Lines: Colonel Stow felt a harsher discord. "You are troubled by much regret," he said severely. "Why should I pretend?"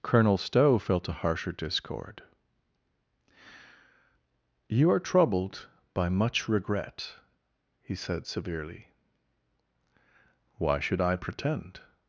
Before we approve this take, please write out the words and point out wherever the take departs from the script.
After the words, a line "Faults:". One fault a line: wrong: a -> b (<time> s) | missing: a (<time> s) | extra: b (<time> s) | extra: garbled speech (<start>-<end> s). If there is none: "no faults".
Colonel Stow felt a harsher discord. "You are troubled by much regret," he said severely. "Why should I pretend?"
Faults:
no faults